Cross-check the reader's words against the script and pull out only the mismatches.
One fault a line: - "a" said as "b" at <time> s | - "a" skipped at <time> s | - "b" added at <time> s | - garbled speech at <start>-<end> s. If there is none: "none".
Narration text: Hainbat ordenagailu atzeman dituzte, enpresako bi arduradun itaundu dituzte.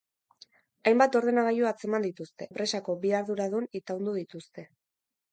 none